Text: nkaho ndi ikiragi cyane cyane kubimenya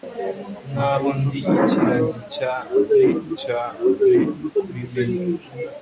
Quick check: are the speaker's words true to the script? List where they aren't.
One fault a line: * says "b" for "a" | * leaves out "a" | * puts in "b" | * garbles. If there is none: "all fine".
all fine